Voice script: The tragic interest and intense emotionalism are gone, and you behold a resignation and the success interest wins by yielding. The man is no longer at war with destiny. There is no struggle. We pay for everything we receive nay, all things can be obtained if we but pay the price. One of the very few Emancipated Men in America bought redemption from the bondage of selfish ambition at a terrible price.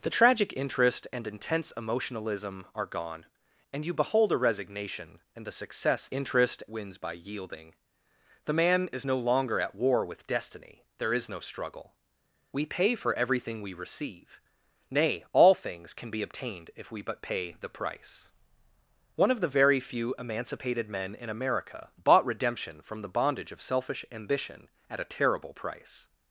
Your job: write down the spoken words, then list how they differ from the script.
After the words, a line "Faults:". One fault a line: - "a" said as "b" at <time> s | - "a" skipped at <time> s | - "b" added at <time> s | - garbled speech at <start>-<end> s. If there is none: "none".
The tragic interest and intense emotionalism are gone, and you behold a resignation and the success interest wins by yielding. The man is no longer at war with destiny. There is no struggle. We pay for everything we receive nay, all things can be obtained if we but pay the price. One of the very few Emancipated Men in America bought redemption from the bondage of selfish ambition at a terrible price.
Faults:
none